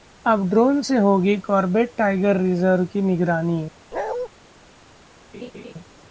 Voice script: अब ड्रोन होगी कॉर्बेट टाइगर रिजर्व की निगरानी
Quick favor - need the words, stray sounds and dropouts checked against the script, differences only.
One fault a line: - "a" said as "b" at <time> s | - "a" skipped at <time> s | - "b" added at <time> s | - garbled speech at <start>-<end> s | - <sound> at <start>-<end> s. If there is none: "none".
- "से" added at 0.8 s
- bark at 3.9-4.3 s
- laugh at 5.3-5.7 s